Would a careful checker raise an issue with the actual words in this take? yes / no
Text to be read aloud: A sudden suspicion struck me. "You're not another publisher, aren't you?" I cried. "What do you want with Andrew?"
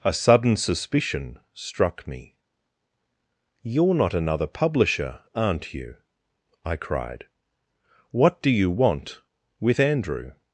no